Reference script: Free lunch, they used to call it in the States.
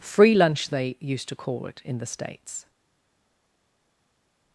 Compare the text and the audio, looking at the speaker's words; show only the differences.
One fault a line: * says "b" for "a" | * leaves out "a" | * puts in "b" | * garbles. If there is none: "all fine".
all fine